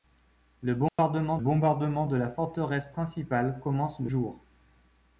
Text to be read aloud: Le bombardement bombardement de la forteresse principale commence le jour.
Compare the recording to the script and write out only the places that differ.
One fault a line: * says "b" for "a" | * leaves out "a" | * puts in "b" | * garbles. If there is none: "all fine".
all fine